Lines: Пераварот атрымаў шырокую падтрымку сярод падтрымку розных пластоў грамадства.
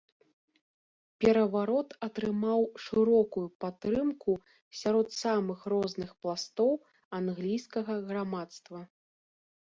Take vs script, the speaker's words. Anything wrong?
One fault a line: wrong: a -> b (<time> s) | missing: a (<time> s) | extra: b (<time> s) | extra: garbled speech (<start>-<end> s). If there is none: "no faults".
wrong: падтрымку -> самых (5.2 s)
extra: англійскага (7.2 s)